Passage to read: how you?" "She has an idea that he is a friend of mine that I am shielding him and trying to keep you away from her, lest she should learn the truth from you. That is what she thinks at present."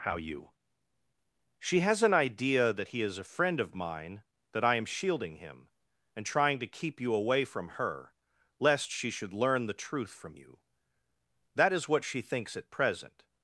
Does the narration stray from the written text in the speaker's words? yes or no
no